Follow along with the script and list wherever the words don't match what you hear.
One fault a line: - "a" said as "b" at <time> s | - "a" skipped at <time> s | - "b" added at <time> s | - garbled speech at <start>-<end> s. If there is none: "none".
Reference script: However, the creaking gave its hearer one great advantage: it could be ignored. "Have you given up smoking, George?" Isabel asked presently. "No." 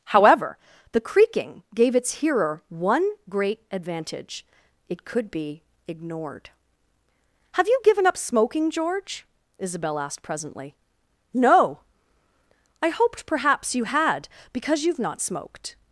- "I hoped perhaps you had because you've not smoked" added at 12.8 s